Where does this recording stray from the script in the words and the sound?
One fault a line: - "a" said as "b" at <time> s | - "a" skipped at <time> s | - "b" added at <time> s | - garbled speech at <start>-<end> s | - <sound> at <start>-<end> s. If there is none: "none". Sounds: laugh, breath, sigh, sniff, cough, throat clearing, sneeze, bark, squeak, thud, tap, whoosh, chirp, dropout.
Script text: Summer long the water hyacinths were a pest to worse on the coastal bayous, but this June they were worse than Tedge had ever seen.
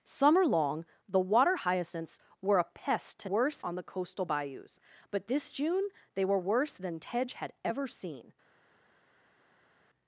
none